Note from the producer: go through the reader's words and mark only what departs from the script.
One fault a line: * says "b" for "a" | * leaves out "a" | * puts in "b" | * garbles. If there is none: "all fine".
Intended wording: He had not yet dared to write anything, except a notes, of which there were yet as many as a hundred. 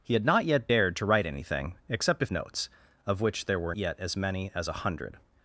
all fine